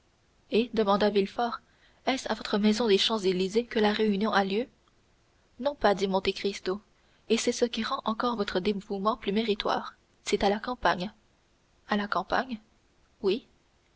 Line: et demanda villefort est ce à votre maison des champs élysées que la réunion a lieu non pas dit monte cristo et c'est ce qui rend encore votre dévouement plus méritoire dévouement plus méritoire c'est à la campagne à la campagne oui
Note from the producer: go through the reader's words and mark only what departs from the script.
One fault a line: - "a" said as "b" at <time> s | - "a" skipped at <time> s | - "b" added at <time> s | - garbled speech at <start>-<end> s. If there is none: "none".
- "dévouement plus méritoire" skipped at 10.0 s